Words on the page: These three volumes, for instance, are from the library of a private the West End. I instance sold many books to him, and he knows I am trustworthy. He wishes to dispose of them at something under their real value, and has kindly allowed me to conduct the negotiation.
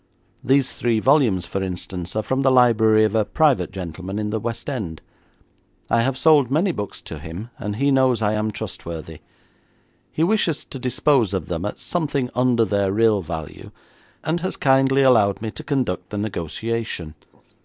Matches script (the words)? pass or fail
fail